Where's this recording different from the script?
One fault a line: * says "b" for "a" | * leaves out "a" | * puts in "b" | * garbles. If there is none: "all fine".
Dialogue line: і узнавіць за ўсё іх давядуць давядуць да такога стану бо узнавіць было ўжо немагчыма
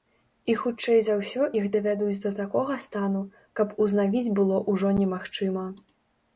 * says "хутчэй" for "узнавіць"
* leaves out "давядуць"
* says "каб" for "бо"